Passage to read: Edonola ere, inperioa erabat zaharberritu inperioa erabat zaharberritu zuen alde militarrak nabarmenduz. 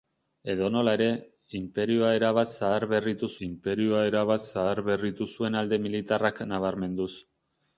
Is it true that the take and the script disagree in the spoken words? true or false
false